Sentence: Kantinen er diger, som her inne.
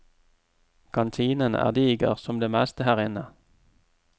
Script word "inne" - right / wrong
right